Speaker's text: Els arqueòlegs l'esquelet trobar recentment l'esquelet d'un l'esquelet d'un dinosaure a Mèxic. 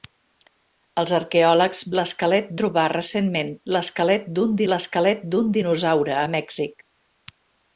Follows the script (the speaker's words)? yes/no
yes